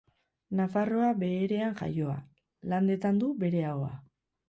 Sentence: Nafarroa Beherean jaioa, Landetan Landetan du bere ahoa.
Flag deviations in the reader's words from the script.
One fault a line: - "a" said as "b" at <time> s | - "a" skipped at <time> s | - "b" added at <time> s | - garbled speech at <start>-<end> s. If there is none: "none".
- "Landetan" skipped at 3.2 s